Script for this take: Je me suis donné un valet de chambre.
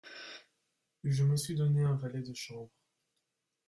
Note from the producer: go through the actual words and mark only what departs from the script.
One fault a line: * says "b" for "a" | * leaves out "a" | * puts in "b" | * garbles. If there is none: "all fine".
all fine